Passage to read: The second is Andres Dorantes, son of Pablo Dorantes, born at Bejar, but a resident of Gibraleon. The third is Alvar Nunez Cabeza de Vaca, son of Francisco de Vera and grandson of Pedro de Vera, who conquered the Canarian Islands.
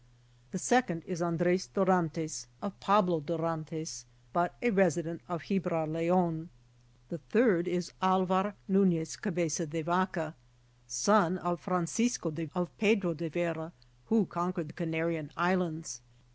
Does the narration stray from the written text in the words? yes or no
yes